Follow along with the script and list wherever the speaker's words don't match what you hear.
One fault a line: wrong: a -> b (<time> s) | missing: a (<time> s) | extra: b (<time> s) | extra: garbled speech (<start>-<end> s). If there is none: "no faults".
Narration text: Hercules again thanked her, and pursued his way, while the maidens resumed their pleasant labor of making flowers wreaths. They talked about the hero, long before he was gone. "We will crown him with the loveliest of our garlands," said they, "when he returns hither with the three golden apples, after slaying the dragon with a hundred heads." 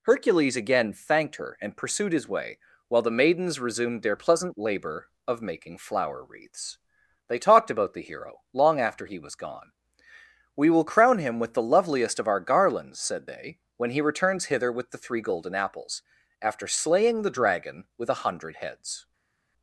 wrong: flowers -> flower (5.8 s)
wrong: before -> after (8.8 s)